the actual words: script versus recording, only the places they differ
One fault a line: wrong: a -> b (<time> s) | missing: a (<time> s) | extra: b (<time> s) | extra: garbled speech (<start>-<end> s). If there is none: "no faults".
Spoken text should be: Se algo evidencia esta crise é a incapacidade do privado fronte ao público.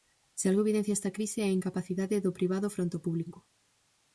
no faults